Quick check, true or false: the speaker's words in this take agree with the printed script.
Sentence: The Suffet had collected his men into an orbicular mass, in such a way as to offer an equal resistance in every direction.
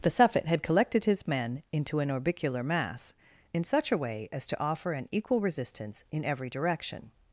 true